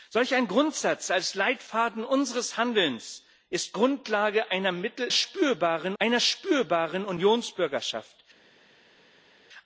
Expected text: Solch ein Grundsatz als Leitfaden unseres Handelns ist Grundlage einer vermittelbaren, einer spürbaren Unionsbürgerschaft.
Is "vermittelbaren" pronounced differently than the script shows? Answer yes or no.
yes